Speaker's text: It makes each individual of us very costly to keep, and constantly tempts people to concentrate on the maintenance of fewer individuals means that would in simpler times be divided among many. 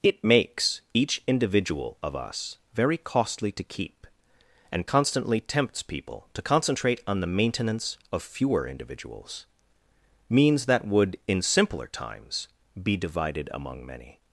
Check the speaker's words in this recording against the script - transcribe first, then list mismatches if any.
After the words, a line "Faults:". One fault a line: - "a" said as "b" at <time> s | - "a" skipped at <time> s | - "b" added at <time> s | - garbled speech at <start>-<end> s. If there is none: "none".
It makes each individual of us very costly to keep, and constantly tempts people to concentrate on the maintenance of fewer individuals means that would in simpler times be divided among many.
Faults:
none